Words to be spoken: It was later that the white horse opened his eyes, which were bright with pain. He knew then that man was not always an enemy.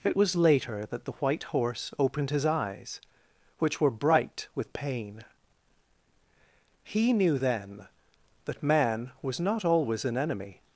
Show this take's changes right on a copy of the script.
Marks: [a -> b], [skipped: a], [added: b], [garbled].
It was later that the white horse opened his eyes, which were bright with pain. He knew then that man was not always an enemy.